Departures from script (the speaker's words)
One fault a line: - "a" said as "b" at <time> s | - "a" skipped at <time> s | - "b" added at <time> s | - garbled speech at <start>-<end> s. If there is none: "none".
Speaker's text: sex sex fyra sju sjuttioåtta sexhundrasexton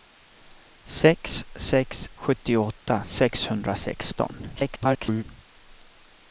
- "fyra sju" skipped at 2.1 s
- garbled speech at 4.6-5.2 s